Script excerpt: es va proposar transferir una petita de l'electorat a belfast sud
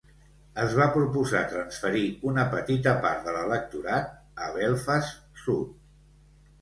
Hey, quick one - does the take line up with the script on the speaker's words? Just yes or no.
no